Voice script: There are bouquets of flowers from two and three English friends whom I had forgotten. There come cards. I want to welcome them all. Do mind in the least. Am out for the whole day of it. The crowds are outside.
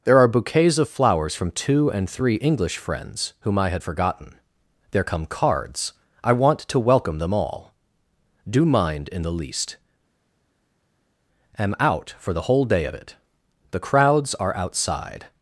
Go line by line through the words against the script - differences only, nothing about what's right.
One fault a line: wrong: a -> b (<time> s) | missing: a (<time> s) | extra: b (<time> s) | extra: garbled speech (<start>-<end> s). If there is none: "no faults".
no faults